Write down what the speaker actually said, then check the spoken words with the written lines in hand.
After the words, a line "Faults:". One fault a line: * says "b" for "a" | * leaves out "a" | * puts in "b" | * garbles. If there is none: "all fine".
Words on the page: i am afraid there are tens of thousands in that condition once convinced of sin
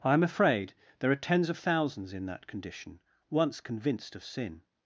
i am afraid there are tens of thousands in that condition once convinced of sin
Faults:
all fine